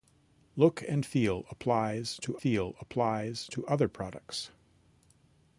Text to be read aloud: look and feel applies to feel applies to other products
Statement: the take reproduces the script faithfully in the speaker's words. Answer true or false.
true